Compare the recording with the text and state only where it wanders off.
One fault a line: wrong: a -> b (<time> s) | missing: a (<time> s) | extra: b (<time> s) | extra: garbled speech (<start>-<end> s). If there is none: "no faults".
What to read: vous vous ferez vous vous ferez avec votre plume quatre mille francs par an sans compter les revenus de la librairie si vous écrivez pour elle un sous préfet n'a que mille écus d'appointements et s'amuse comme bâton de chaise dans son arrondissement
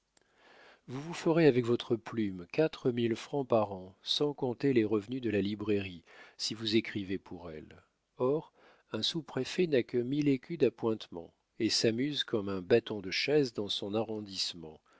missing: vous vous ferez (1.4 s)
extra: or (8.2 s)
extra: un (12.5 s)